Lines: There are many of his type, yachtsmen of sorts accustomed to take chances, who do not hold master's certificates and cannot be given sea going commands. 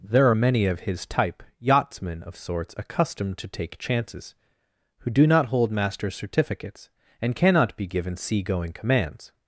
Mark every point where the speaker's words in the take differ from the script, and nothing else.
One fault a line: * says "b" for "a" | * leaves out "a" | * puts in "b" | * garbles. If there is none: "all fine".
all fine